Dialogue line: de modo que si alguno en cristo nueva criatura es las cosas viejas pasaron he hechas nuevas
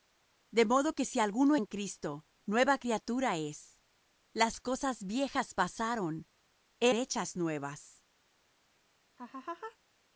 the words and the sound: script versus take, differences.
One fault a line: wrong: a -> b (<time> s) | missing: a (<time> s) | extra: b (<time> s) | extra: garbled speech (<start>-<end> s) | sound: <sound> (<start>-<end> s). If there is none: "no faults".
sound: laugh (9.2-9.8 s)